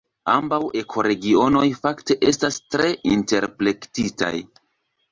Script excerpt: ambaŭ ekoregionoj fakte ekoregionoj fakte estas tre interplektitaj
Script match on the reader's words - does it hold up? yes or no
no